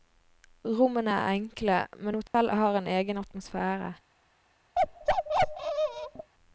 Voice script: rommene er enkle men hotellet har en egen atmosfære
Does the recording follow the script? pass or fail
pass